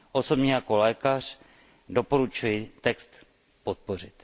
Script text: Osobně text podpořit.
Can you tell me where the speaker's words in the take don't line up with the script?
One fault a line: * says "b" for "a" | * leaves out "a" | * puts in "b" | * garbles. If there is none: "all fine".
* puts in "jako lékař doporučuji"